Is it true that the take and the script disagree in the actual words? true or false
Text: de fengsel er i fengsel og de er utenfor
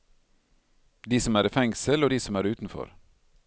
true